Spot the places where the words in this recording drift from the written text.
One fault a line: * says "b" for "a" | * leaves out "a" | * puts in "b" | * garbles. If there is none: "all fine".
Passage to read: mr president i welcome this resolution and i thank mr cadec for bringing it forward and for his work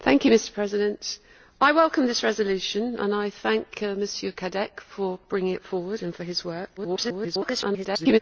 * garbles